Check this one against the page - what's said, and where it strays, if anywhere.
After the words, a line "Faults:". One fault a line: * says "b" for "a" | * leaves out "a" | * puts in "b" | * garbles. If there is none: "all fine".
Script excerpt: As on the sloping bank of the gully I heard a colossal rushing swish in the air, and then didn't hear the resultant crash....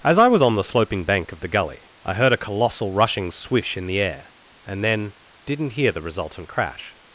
As I was on the sloping bank of the gully I heard a colossal rushing swish in the air, and then didn't hear the resultant crash....
Faults:
* puts in "I was"